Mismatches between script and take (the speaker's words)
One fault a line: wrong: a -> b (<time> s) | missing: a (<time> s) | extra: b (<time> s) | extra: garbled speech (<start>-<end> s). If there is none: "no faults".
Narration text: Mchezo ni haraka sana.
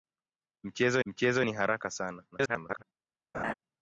extra: mchezo (1.0 s)
extra: garbled speech (2.3-2.8 s)